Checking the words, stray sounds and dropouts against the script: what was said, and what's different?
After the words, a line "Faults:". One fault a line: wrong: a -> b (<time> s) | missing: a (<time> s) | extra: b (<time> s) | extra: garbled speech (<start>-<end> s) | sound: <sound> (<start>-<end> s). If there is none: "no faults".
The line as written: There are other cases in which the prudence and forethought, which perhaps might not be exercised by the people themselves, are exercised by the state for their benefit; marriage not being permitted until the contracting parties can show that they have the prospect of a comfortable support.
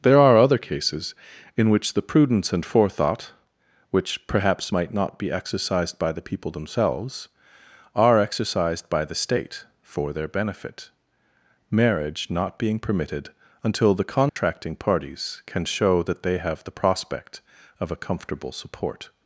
There are other cases in which the prudence and forethought, which perhaps might not be exercised by the people themselves, are exercised by the state for their benefit; marriage not being permitted until the contracting parties can show that they have the prospect of a comfortable support.
Faults:
sound: dropout (14.3-14.4 s)